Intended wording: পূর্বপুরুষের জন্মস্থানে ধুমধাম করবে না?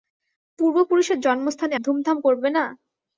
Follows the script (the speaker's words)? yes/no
yes